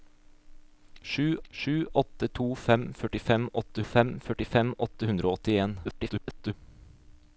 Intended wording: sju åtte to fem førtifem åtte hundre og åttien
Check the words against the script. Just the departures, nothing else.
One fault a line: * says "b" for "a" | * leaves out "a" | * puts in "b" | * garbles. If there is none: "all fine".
* puts in "sju"
* puts in "fem førtifem åtte"
* garbles